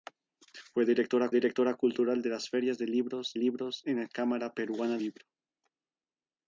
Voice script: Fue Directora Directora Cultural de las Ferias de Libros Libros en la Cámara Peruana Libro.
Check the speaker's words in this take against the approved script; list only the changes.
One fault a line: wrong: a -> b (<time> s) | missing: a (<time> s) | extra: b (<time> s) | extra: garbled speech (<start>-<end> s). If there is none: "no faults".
no faults